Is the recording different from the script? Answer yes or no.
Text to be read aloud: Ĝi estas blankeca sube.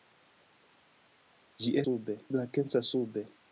yes